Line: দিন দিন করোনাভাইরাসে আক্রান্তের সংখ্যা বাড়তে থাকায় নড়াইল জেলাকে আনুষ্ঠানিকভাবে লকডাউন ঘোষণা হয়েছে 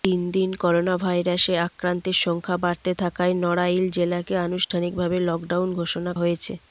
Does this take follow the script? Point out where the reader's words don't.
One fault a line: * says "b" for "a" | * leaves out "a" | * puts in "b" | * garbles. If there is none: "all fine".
all fine